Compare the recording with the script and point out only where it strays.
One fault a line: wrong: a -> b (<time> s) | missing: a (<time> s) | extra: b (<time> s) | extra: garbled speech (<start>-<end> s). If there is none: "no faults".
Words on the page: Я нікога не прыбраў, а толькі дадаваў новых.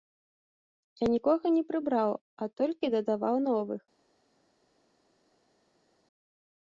no faults